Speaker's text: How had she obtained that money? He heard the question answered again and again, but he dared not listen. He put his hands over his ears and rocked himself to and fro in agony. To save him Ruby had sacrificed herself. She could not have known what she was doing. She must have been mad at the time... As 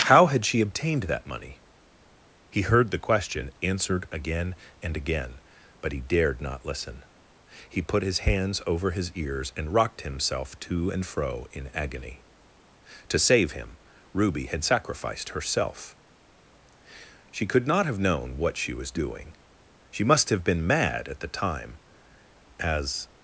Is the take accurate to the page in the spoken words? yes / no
yes